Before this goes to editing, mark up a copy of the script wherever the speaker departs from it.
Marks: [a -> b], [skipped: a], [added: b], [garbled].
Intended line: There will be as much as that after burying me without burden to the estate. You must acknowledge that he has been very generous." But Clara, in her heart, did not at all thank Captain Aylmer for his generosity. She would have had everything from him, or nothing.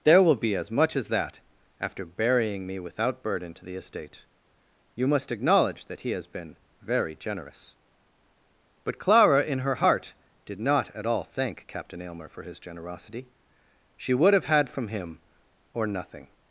There will be as much as that after burying me without burden to the estate. You must acknowledge that he has been very generous." But Clara, in her heart, did not at all thank Captain Aylmer for his generosity. She would have had [skipped: everything] from him, or nothing.